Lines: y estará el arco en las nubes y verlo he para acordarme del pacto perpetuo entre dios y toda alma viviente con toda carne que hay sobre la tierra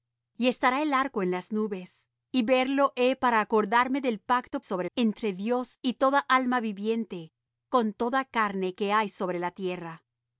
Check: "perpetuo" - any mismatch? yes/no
yes